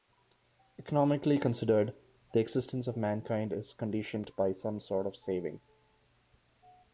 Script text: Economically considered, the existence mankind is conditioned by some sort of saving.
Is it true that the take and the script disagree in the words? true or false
true